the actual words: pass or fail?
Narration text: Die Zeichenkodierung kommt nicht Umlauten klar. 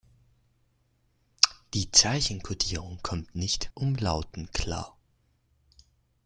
pass